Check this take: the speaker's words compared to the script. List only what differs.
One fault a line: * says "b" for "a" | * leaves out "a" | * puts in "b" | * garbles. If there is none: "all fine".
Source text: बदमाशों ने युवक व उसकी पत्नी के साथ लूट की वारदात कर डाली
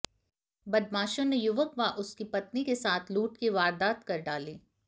all fine